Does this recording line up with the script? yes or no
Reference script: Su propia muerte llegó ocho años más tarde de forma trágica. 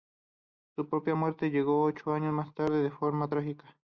yes